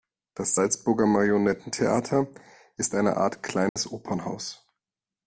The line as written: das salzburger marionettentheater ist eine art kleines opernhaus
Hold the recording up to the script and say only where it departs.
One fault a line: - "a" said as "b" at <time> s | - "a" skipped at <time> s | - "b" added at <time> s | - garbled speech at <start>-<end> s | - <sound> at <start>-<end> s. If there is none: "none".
- dropout at 3.7-3.8 s